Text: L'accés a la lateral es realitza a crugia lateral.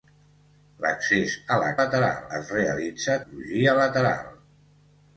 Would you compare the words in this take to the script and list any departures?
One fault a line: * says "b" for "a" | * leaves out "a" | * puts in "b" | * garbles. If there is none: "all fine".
all fine